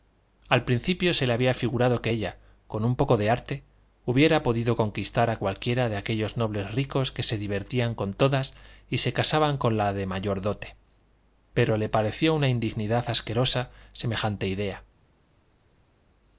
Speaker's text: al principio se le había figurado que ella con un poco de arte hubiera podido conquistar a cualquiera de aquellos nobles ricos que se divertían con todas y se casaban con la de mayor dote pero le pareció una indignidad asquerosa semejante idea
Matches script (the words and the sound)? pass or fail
pass